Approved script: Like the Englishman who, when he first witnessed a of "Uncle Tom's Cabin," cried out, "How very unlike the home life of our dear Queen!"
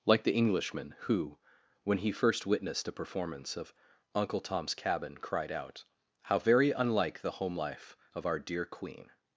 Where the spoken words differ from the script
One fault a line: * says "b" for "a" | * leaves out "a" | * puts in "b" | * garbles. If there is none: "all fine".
* puts in "performance"